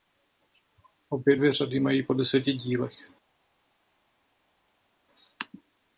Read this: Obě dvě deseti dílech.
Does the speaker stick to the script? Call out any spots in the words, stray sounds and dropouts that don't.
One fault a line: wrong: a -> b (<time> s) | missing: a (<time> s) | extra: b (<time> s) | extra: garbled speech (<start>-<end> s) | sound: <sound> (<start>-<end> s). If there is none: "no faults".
extra: řady mají po (1.5 s)